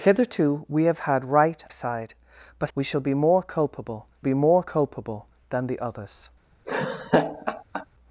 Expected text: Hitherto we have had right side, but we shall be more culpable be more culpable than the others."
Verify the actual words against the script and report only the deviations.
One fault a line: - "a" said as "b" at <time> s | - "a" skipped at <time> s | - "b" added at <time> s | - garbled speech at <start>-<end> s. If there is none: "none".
none